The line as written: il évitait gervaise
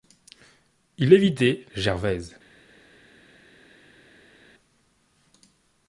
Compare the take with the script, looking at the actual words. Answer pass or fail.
pass